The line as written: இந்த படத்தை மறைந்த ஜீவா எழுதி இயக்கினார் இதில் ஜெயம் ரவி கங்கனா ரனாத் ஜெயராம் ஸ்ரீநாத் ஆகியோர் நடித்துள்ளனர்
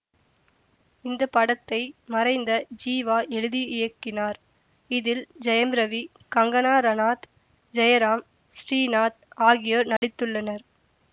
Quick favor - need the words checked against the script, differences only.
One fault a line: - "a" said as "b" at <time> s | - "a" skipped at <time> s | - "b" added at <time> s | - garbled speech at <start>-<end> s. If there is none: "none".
none